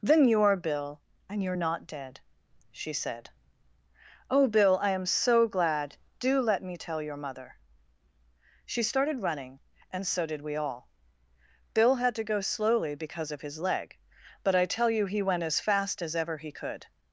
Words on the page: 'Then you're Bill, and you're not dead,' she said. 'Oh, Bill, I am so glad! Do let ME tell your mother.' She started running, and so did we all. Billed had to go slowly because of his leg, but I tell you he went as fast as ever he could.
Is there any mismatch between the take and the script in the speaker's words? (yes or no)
yes